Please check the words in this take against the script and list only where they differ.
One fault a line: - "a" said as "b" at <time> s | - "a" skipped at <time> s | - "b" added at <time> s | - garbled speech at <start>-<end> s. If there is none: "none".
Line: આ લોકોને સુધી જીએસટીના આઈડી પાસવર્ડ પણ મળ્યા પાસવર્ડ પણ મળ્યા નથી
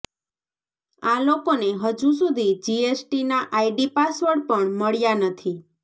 - "હજુ" added at 1.8 s
- "પાસવર્ડ પણ મળ્યા" skipped at 5.2 s